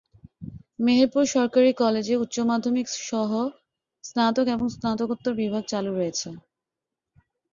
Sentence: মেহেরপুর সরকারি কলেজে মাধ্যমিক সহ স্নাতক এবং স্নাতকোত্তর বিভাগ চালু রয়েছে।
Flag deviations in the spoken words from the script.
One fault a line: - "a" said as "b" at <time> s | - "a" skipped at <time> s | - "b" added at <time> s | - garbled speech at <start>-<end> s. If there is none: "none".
- "উচ্চ" added at 2.1 s